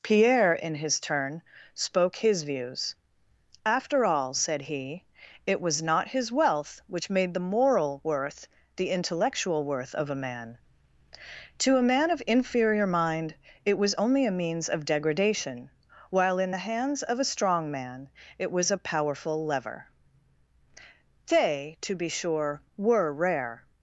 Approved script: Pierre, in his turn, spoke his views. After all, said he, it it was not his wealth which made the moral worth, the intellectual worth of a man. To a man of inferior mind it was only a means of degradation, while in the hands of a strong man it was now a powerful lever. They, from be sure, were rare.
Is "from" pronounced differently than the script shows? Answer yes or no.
yes